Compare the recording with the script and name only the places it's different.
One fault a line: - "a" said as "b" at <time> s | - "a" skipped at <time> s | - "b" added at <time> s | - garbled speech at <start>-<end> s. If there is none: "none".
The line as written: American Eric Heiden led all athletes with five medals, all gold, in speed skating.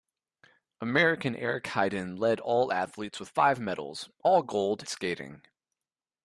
- "in speed" skipped at 4.9 s